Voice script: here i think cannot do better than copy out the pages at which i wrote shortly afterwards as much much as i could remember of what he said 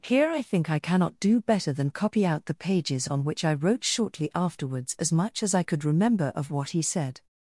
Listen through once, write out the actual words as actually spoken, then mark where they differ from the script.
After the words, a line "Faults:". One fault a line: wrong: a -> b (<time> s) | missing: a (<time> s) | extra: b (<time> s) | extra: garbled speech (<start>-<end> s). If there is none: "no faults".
here i think i cannot do better than copy out the pages on which i wrote shortly afterwards as much as i could remember of what he said
Faults:
extra: i (0.7 s)
wrong: at -> on (3.1 s)
missing: much (5.4 s)